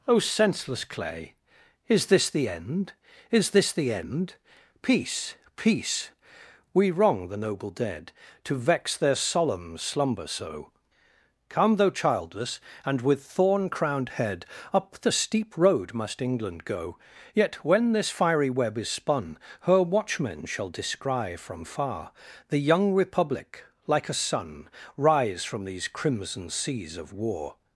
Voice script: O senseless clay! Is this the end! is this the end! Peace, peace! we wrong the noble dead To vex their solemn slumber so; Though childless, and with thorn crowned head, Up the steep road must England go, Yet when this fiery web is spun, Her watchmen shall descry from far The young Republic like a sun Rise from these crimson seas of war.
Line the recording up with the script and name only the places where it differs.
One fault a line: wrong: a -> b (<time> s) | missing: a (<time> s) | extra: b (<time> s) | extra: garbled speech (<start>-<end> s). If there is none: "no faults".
extra: come (11.5 s)